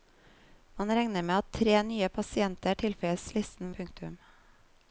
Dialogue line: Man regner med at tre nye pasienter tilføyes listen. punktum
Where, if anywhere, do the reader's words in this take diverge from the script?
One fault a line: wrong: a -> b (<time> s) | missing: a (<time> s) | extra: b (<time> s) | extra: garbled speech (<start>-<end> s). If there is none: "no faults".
no faults